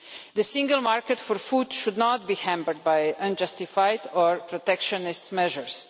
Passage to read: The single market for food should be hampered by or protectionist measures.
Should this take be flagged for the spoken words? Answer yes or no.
yes